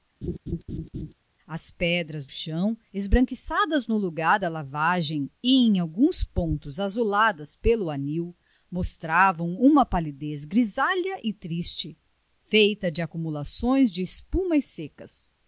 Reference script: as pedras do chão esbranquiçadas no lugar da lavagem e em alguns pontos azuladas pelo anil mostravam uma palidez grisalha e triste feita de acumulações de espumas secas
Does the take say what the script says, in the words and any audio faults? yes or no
no